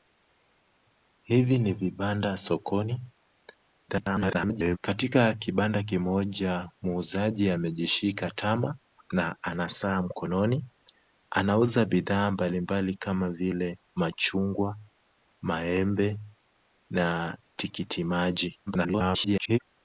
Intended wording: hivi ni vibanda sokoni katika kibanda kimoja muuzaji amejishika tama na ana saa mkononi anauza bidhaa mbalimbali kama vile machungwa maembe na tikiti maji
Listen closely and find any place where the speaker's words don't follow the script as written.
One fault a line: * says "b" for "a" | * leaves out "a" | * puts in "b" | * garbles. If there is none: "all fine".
* garbles
* garbles